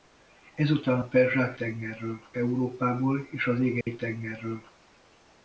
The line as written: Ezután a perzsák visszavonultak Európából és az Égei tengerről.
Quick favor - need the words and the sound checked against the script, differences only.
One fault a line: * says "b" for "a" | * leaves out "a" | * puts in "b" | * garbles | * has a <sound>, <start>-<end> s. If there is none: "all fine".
* says "tengerről" for "visszavonultak"
* has a dropout, 3.8-3.9 s